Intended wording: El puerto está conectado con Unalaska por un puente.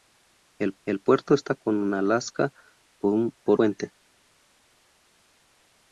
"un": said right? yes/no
no